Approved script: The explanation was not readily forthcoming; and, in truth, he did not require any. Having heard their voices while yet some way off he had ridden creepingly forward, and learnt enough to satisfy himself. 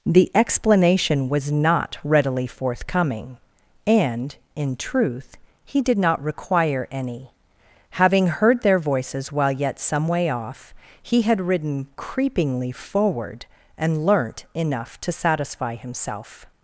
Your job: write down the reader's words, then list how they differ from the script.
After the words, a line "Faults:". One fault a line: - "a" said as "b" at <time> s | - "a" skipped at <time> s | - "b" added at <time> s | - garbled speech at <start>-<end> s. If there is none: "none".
The explanation was not readily forthcoming; and, in truth, he did not require any. Having heard their voices while yet some way off he had ridden creepingly forward, and learnt enough to satisfy himself.
Faults:
none